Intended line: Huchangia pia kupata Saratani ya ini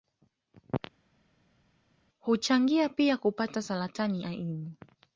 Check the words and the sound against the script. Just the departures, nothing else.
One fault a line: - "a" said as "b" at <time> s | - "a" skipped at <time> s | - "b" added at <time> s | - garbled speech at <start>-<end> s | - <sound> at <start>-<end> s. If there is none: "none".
none